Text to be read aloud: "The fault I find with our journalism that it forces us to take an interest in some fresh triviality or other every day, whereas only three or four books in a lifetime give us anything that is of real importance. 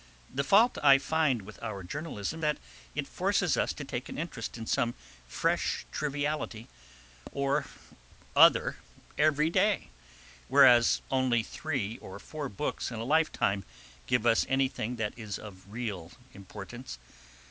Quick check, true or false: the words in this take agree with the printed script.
true